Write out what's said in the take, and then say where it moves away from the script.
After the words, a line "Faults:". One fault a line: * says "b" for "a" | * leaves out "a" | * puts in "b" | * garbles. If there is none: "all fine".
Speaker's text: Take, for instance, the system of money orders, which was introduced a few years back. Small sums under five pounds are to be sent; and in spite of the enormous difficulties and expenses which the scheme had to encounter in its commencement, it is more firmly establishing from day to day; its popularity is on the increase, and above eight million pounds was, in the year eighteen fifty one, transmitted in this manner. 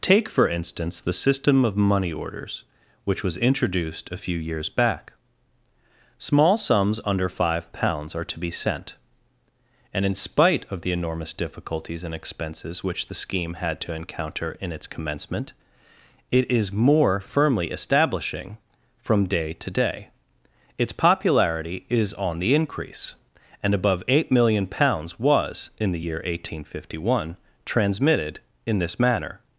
Take, for instance, the system of money orders, which was introduced a few years back. Small sums under five pounds are to be sent; and in spite of the enormous difficulties and expenses which the scheme had to encounter in its commencement, it is more firmly establishing from day to day; its popularity is on the increase, and above eight million pounds was, in the year eighteen fifty one, transmitted in this manner.
Faults:
all fine